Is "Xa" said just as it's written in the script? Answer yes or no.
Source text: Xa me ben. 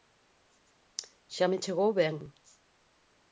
yes